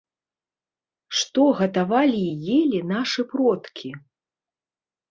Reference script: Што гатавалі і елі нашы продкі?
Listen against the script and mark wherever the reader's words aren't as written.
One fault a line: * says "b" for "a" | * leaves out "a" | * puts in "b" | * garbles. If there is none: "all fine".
all fine